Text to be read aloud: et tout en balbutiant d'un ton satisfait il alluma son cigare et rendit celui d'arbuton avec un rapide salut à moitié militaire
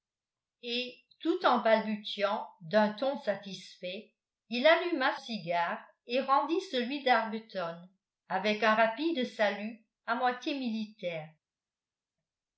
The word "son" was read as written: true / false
false